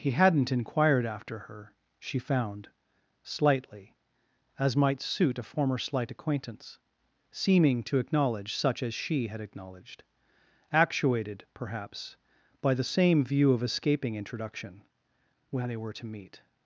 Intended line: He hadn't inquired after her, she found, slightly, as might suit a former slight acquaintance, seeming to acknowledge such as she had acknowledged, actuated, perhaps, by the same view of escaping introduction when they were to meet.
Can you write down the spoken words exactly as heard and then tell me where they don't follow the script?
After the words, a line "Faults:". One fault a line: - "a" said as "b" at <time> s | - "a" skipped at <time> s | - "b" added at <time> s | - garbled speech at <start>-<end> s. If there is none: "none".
He hadn't inquired after her, she found, slightly, as might suit a former slight acquaintance, seeming to acknowledge such as she had acknowledged, actuated, perhaps, by the same view of escaping introduction when they were to meet.
Faults:
none